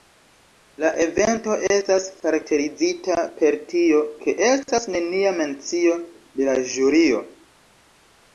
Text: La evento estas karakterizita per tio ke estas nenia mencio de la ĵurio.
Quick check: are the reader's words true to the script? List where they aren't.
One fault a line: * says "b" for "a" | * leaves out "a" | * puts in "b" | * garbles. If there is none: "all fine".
all fine